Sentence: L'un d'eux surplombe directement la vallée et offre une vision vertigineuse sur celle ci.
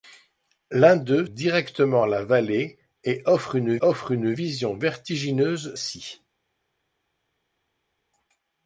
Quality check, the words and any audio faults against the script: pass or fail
fail